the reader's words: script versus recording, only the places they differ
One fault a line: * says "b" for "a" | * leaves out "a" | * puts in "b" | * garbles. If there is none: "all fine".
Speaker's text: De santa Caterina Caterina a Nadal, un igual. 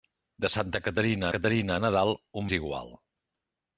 all fine